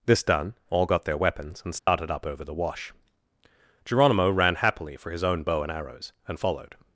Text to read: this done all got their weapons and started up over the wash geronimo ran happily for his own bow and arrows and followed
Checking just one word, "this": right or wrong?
right